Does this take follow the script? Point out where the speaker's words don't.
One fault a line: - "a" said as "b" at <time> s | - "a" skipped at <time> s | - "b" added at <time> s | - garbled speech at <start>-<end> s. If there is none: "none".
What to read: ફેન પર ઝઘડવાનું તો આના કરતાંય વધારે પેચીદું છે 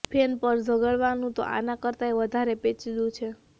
none